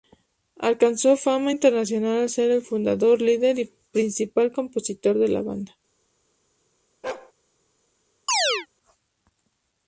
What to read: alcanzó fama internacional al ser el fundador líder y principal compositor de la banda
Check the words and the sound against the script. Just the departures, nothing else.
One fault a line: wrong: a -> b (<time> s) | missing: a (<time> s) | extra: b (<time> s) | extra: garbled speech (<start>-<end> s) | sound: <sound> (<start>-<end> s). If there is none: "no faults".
sound: bark (7.0-7.3 s)
sound: chirp (8.3-8.7 s)